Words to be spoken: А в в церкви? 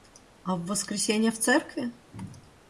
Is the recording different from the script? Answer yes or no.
yes